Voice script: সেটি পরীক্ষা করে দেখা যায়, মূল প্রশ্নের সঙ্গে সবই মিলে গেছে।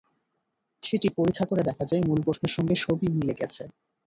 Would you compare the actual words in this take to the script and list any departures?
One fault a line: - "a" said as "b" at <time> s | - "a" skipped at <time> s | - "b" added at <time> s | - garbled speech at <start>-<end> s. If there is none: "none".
none